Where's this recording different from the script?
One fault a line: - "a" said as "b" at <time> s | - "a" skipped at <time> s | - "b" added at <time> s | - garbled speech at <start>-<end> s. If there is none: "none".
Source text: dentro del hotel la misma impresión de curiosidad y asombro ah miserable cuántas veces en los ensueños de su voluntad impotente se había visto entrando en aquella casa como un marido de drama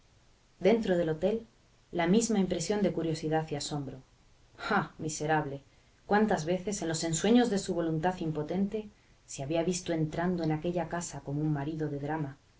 none